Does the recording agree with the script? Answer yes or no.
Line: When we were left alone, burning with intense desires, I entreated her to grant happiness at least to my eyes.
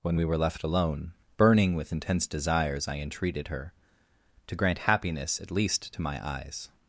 yes